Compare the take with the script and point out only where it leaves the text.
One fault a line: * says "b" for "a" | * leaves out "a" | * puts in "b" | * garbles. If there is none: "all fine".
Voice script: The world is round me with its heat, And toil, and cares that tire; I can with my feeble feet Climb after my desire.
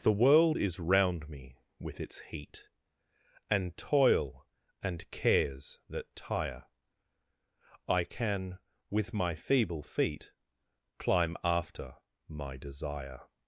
all fine